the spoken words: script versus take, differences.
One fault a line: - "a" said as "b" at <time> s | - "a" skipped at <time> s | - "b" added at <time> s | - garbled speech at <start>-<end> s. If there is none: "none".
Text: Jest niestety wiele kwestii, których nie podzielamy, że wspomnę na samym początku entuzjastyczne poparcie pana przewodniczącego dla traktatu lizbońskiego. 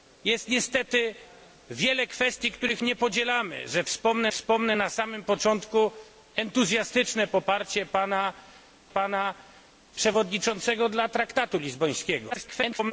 - "wspomnę" added at 4.3 s
- "pana" added at 8.9 s
- garbled speech at 12.3-12.9 s